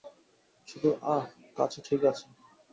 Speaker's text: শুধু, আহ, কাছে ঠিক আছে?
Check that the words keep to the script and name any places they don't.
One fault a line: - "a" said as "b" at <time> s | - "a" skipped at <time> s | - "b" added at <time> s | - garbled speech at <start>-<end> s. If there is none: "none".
none